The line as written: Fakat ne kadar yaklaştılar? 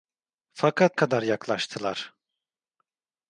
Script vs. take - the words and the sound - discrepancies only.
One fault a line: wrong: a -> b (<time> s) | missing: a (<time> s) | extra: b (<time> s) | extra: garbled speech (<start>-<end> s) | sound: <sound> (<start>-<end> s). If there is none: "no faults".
missing: ne (1.0 s)